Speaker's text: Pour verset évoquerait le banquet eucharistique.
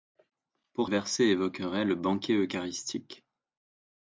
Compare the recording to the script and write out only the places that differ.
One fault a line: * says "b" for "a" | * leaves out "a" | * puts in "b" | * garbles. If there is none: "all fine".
all fine